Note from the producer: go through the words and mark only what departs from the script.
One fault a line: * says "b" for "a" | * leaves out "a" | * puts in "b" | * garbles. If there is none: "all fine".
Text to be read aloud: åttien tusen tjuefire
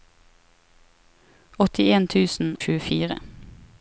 all fine